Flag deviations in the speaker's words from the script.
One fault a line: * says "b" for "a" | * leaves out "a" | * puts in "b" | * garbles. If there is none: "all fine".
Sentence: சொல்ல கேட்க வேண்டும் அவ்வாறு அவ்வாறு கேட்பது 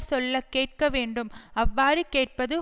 * leaves out "அவ்வாறு"